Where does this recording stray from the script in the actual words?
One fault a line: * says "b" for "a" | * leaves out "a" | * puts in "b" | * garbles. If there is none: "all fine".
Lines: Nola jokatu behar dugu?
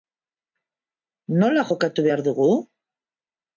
all fine